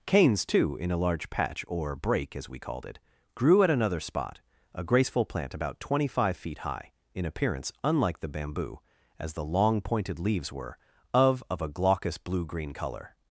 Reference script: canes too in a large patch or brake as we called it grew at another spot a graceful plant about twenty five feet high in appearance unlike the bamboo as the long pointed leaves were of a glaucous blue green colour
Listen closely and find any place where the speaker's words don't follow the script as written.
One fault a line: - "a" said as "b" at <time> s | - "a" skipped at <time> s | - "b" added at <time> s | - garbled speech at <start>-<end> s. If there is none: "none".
- "of" added at 11.5 s